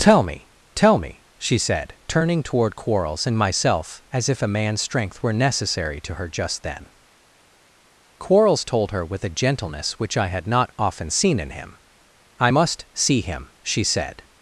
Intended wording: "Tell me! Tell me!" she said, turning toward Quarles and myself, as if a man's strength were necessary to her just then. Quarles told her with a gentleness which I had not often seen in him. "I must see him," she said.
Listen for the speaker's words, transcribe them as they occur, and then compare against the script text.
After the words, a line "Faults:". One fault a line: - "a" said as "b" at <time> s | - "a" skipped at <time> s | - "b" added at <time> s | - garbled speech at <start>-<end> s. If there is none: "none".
"Tell me! Tell me!" she said, turning toward Quarles and myself, as if a man's strength were necessary to her just then. Quarles told her with a gentleness which I had not often seen in him. "I must see him," she said.
Faults:
none